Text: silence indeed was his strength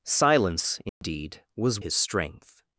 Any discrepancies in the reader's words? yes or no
no